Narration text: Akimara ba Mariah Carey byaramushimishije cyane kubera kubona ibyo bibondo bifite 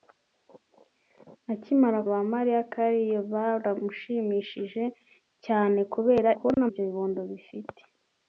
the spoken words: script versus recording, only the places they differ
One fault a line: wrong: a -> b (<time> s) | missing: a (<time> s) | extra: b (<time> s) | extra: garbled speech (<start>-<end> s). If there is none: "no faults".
no faults